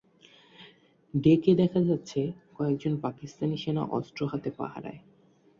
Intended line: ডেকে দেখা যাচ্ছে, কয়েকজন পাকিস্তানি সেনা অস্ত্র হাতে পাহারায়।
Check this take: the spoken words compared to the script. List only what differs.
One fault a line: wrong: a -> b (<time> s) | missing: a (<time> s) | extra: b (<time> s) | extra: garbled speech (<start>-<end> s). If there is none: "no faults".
no faults